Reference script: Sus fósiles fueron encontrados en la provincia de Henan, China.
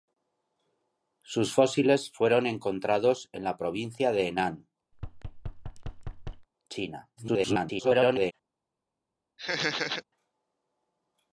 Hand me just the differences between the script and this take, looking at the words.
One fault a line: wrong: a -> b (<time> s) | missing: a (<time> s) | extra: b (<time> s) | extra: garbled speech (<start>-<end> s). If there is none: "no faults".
extra: garbled speech (7.2-8.3 s)